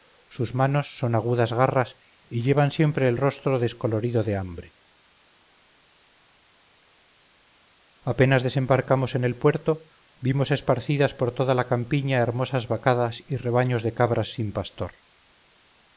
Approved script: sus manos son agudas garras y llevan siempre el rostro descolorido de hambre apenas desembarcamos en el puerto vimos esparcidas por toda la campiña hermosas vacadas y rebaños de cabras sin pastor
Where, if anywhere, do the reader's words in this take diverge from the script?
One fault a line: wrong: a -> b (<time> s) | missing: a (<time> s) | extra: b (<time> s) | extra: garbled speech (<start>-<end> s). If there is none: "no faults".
no faults